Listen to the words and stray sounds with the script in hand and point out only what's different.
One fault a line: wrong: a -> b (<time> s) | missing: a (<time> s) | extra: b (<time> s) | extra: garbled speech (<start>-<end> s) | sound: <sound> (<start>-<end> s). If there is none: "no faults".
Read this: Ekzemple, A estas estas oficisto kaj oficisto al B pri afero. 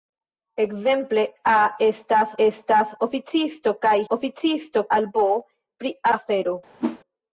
sound: whoosh (6.8-7.0 s)